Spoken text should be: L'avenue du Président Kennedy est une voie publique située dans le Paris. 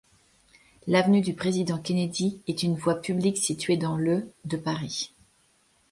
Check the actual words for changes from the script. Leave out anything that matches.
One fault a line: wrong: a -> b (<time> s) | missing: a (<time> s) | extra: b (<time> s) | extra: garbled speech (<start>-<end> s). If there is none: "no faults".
extra: de (4.5 s)